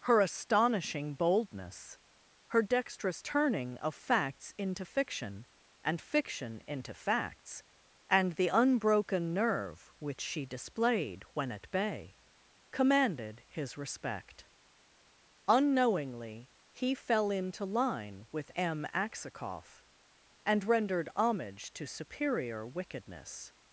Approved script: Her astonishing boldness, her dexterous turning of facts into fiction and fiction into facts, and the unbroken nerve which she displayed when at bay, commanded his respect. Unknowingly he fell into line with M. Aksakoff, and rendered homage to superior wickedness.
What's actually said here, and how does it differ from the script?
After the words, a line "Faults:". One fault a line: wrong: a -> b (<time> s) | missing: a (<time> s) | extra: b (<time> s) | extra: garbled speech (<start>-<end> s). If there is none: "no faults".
Her astonishing boldness, her dexterous turning of facts into fiction and fiction into facts, and the unbroken nerve which she displayed when at bay, commanded his respect. Unknowingly he fell into line with M. Aksakoff, and rendered homage to superior wickedness.
Faults:
no faults